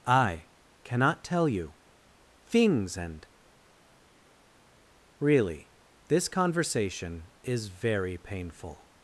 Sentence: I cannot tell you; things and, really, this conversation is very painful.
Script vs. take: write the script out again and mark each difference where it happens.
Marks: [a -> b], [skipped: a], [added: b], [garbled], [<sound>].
I cannot tell you; things and, really, this conversation is very painful.